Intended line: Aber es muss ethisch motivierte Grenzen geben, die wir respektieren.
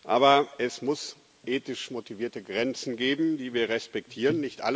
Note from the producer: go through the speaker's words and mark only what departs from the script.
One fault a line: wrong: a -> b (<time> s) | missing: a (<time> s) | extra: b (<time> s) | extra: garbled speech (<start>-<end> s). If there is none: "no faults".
no faults